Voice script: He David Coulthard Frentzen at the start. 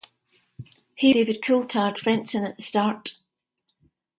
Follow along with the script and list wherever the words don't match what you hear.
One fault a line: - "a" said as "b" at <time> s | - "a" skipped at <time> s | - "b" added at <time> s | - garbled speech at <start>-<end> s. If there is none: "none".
none